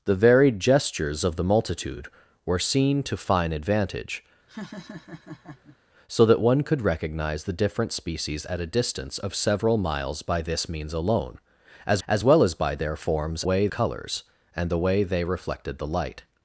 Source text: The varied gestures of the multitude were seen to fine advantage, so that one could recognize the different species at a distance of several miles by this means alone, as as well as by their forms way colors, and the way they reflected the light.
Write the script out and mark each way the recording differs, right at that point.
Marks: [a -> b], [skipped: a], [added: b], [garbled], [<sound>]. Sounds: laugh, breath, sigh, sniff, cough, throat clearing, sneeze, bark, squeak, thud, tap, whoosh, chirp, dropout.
The varied gestures of the multitude were seen to fine advantage, [laugh] so that one could recognize the different species at a distance of several miles by this means alone, as as well as by their forms way colors, and the way they reflected the light.